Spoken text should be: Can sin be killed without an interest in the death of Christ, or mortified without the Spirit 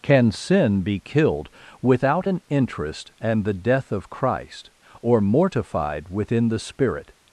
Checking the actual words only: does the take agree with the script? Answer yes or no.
no